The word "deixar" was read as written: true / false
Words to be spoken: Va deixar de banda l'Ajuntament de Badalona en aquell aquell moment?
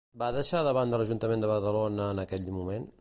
true